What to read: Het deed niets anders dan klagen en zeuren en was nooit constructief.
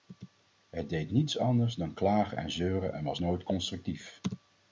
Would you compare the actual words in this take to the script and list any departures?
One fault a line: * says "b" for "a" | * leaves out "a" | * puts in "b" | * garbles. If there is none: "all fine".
all fine